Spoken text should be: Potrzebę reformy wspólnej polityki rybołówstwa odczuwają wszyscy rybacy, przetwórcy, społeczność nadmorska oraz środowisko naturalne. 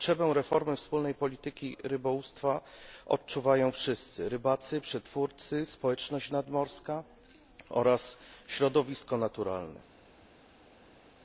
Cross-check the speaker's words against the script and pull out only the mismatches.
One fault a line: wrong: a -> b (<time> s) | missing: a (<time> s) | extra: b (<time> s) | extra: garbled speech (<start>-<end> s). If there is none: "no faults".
no faults